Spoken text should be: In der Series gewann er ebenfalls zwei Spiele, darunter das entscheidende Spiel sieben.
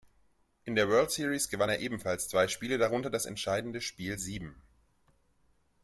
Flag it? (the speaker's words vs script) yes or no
yes